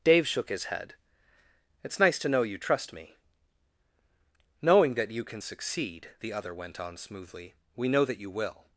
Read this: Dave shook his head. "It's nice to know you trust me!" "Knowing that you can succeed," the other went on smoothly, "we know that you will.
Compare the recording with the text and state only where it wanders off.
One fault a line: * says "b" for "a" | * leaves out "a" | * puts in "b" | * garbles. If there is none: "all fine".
all fine